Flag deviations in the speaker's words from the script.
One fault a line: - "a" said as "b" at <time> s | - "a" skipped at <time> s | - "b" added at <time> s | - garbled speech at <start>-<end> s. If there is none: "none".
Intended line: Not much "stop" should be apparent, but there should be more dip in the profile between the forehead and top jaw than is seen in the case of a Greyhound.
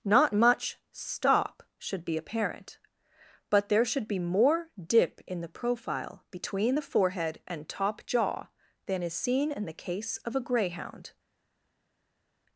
none